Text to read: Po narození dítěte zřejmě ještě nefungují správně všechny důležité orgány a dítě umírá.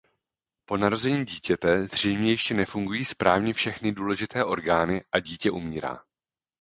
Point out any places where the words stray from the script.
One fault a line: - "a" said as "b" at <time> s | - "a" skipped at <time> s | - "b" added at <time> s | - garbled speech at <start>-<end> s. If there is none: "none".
none